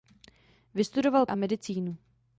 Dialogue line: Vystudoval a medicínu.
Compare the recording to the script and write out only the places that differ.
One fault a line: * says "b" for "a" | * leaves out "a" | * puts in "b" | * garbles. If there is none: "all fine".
all fine